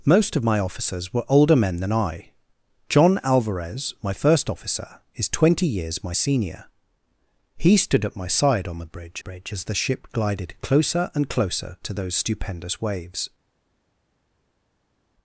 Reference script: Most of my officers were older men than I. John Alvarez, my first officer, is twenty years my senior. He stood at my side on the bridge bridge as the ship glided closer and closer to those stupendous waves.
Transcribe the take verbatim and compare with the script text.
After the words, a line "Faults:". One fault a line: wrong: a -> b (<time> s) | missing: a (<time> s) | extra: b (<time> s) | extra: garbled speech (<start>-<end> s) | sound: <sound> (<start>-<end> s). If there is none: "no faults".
Most of my officers were older men than I. John Alvarez, my first officer, is twenty years my senior. He stood at my side on the bridge bridge as the ship glided closer and closer to those stupendous waves.
Faults:
no faults